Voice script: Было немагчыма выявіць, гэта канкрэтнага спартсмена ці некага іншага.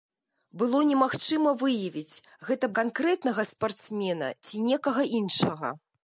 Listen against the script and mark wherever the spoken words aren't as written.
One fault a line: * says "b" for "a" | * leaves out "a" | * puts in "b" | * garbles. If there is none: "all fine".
all fine